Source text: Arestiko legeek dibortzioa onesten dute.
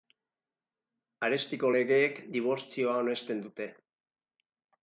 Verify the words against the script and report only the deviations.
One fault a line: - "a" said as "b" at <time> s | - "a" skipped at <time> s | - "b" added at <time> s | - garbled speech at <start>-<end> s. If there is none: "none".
none